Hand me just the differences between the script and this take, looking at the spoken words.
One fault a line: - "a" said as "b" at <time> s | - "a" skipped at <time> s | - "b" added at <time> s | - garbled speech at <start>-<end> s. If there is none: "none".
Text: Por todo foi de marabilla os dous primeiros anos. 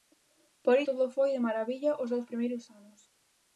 none